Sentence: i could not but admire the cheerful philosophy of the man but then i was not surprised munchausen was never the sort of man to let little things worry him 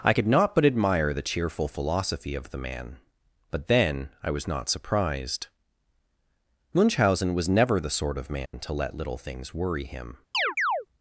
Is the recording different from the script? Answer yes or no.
no